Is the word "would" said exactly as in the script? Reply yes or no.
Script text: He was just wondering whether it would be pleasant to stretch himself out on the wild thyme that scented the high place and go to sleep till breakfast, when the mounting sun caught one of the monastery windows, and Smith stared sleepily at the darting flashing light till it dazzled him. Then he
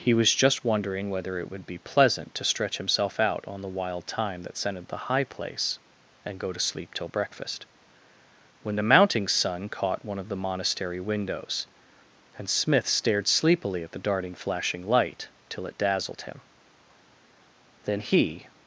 yes